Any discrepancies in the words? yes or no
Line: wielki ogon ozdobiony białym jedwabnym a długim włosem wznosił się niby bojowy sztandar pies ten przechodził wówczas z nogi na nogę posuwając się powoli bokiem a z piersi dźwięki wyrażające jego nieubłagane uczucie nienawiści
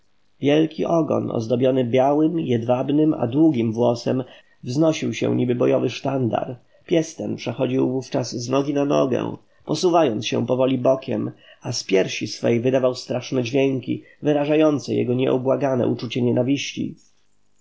yes